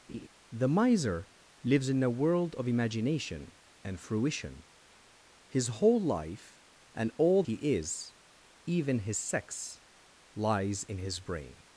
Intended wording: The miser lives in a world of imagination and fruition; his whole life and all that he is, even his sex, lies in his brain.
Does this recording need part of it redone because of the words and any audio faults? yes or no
yes